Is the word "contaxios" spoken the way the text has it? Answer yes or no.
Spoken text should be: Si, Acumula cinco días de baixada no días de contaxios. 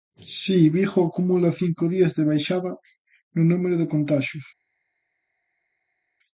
yes